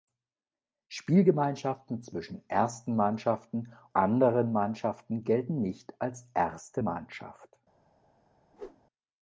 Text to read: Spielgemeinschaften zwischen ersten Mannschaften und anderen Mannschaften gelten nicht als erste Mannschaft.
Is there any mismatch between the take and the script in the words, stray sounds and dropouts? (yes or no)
yes